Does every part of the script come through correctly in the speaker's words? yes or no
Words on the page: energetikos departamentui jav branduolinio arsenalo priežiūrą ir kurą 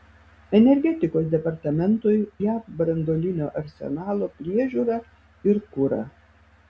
yes